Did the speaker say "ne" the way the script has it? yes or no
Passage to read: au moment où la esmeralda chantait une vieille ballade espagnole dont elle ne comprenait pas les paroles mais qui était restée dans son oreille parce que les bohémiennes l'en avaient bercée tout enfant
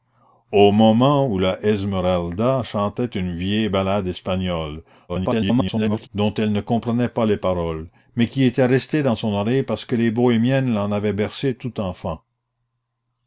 yes